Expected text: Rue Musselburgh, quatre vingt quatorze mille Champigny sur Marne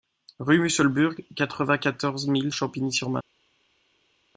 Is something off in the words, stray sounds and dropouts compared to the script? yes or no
no